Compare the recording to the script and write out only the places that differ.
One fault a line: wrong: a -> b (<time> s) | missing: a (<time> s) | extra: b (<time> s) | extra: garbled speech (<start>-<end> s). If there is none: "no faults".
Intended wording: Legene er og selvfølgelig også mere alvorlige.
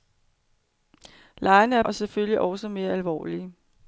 no faults